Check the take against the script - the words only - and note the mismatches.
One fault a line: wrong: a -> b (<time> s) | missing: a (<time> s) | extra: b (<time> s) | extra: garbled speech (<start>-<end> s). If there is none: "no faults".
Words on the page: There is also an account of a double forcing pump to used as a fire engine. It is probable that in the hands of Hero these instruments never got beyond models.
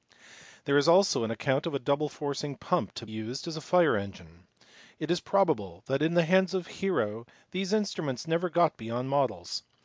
no faults